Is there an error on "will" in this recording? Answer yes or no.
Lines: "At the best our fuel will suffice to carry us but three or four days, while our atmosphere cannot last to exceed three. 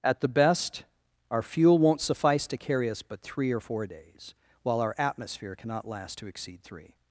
yes